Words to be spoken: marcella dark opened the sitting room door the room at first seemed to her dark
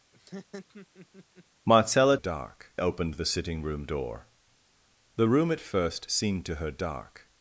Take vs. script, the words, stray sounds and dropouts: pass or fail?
fail